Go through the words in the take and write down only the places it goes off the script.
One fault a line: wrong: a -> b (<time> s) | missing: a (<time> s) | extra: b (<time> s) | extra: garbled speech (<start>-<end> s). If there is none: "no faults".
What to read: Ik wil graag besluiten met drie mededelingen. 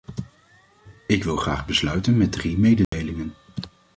no faults